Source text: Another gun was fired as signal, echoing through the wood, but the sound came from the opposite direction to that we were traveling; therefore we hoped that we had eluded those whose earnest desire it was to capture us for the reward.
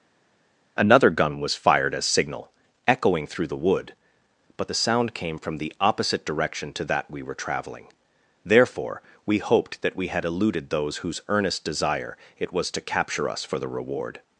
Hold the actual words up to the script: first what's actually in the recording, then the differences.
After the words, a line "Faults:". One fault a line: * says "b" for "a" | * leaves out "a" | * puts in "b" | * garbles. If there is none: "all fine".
Another gun was fired as signal, echoing through the wood, but the sound came from the opposite direction to that we were traveling; therefore we hoped that we had eluded those whose earnest desire it was to capture us for the reward.
Faults:
all fine